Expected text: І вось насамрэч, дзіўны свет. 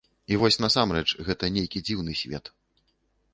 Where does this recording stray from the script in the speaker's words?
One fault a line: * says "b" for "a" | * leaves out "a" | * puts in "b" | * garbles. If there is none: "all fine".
* puts in "гэта нейкі"